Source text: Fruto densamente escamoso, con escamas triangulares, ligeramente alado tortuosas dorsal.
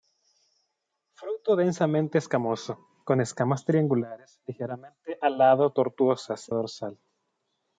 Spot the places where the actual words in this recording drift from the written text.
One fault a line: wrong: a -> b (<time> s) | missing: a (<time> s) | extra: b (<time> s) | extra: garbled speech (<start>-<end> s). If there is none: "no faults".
no faults